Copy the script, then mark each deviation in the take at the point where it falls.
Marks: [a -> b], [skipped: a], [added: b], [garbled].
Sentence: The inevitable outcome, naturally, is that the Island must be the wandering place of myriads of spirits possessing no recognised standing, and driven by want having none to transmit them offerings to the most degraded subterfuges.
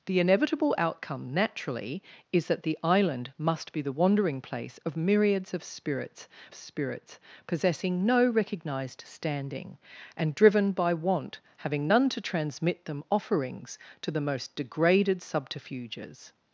The inevitable outcome, naturally, is that the Island must be the wandering place of myriads of spirits [added: spirits] possessing no recognised standing, and driven by want having none to transmit them offerings to the most degraded subterfuges.